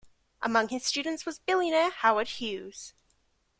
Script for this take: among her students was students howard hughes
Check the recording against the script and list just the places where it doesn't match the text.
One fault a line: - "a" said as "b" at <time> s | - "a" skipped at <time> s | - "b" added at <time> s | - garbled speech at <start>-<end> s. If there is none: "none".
- "her" said as "his" at 0.7 s
- "students" said as "billionaire" at 1.4 s